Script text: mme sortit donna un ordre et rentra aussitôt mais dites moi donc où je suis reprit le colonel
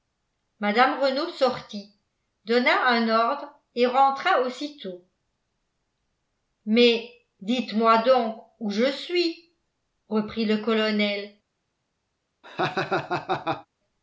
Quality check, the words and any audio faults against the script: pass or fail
fail